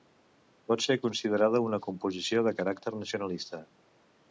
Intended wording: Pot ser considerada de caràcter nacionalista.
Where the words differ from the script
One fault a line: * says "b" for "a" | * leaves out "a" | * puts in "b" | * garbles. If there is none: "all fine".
* puts in "una composició"